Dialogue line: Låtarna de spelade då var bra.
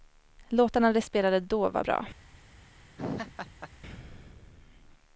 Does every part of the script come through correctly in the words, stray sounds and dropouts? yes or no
no